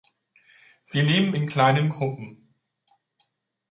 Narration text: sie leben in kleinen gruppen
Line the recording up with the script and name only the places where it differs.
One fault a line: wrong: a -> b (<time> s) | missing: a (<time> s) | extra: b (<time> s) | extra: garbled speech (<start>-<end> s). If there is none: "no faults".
no faults